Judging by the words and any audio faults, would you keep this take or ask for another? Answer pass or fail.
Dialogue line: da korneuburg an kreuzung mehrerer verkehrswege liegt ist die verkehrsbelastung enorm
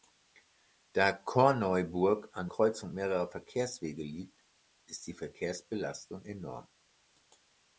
pass